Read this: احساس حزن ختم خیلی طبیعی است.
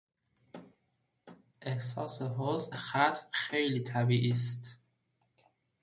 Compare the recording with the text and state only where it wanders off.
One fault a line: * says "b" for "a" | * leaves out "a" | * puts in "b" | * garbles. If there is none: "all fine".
all fine